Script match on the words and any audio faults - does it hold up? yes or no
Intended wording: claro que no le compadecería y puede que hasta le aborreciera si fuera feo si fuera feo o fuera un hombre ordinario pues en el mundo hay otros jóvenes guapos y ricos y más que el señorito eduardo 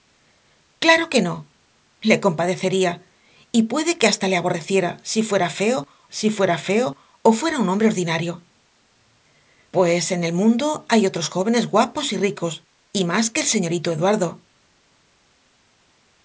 yes